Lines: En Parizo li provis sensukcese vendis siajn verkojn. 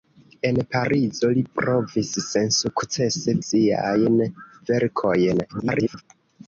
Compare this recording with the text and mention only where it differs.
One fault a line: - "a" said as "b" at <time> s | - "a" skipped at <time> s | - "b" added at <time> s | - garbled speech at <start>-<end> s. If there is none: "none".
- "vendis" skipped at 3.4 s
- garbled speech at 5.5-6.0 s